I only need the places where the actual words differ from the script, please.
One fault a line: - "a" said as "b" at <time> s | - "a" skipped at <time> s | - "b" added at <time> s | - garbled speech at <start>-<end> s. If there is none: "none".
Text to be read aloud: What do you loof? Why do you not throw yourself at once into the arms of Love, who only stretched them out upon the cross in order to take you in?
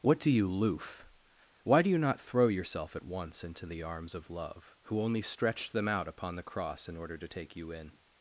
none